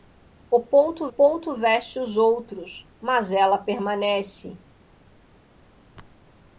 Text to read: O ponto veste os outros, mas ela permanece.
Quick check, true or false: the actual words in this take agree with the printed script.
false